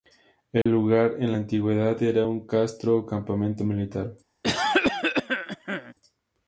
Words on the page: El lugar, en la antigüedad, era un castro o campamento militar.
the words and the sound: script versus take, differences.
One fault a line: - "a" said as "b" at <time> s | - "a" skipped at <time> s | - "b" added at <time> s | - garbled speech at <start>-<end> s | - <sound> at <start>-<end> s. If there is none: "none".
- dropout at 0.6-0.7 s
- cough at 4.4-5.9 s